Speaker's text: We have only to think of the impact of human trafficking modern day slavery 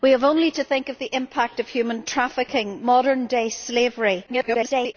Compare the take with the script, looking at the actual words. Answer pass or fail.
fail